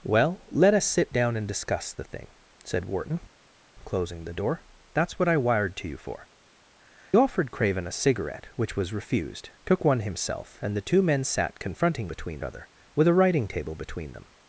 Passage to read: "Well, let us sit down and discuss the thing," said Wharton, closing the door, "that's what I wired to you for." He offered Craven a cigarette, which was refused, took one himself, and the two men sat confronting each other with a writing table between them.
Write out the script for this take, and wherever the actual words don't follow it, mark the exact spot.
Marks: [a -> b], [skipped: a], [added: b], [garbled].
"Well, let us sit down and discuss the thing," said Wharton, closing the door, "that's what I wired to you for." [skipped: He] offered Craven a cigarette, which was refused, took one himself, and the two men sat confronting [each -> between] other with a writing table between them.